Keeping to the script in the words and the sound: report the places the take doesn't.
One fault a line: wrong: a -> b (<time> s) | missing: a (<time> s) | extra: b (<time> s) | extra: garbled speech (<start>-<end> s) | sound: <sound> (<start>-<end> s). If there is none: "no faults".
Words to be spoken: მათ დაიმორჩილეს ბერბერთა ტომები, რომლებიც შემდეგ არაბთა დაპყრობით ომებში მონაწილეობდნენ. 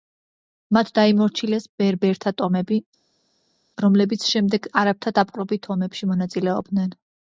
no faults